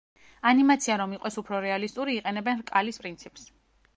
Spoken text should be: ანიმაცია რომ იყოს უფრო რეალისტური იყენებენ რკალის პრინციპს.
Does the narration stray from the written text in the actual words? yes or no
no